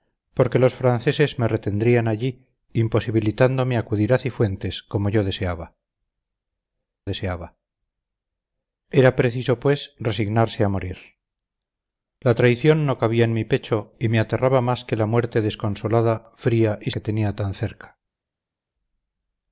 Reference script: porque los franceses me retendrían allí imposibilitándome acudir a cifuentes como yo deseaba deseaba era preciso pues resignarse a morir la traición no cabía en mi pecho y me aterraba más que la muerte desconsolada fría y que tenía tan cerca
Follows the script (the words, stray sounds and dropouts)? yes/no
yes